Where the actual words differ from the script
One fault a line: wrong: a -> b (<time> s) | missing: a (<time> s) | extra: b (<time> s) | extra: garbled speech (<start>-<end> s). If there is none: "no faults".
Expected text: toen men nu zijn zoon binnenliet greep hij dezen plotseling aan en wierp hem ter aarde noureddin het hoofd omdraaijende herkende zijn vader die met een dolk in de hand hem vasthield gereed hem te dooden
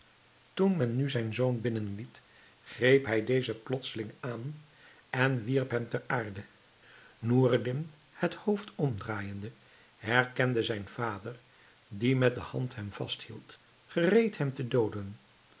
missing: een dolk in (12.4 s)